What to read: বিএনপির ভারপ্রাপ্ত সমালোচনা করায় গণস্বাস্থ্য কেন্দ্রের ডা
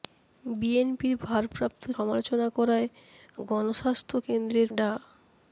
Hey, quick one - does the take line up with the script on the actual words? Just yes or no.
yes